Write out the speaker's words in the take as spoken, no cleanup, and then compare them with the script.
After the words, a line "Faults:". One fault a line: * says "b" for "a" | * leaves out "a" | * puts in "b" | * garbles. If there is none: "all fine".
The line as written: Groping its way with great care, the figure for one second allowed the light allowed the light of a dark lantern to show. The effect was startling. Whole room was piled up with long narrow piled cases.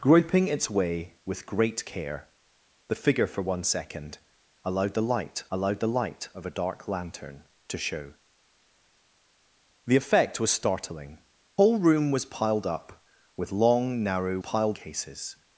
Groping its way with great care, the figure for one second allowed the light allowed the light of a dark lantern to show. The effect was startling. Whole room was piled up with long narrow piled cases.
Faults:
all fine